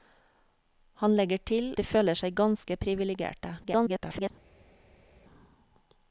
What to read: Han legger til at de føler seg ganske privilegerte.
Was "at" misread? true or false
true